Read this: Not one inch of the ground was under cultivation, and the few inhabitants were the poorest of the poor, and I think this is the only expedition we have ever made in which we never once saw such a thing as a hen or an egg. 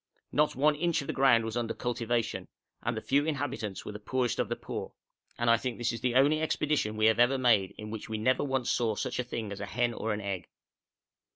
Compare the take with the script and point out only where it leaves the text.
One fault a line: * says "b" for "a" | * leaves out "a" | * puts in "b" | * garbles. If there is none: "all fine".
all fine